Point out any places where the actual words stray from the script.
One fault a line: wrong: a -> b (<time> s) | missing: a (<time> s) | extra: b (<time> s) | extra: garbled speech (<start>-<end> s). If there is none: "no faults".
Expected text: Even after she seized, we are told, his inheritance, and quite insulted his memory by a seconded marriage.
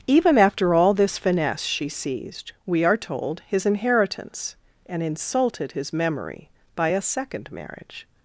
extra: all this finesse (0.7 s)
missing: quite (5.0 s)
wrong: seconded -> second (7.0 s)